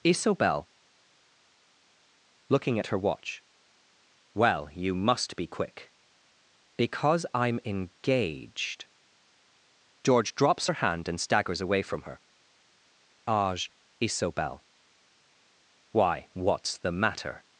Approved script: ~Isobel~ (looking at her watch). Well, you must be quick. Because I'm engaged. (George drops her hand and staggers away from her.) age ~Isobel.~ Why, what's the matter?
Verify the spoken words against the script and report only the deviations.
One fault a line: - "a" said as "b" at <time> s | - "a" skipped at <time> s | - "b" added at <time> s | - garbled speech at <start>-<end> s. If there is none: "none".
none